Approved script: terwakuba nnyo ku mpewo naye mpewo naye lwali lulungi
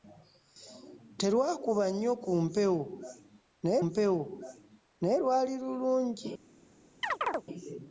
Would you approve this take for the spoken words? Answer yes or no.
yes